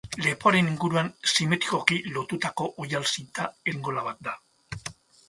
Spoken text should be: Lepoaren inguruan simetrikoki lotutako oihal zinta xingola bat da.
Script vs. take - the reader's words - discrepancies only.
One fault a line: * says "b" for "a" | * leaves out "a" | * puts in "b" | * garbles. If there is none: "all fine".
all fine